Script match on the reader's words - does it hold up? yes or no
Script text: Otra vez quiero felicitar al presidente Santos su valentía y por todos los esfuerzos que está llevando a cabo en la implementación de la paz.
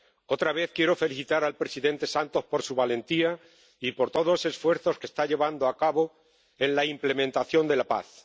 no